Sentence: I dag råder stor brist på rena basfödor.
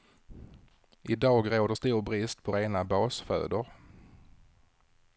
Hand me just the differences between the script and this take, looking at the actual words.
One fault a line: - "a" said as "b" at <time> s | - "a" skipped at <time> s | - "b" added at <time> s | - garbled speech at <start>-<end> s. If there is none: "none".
none